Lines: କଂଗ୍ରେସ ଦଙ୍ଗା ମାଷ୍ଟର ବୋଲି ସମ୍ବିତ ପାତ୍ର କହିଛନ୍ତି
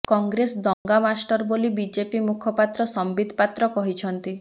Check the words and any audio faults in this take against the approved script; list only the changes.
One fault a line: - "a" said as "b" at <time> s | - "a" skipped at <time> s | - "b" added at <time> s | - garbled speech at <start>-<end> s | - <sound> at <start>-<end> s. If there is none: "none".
- dropout at 0.7-0.9 s
- "ବିଜେପି ମୁଖପାତ୍ର" added at 1.8 s